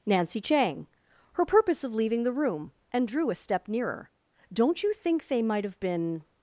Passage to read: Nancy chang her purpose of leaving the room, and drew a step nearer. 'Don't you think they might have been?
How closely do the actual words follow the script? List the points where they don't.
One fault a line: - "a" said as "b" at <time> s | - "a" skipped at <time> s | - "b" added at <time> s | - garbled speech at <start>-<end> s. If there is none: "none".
none